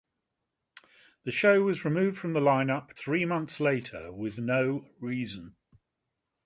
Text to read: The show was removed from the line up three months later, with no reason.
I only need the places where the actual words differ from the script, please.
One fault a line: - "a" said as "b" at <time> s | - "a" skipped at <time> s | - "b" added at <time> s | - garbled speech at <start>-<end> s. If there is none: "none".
none